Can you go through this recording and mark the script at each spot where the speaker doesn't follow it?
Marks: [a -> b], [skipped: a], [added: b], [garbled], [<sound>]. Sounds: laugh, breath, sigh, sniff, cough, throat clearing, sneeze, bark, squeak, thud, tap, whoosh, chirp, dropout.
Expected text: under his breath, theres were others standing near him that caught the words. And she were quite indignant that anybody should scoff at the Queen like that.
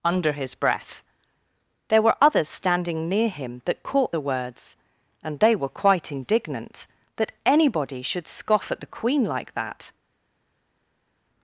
under his breath, [theres -> there] were others standing near him that caught the words. And [she -> they] were quite indignant that anybody should scoff at the Queen like that.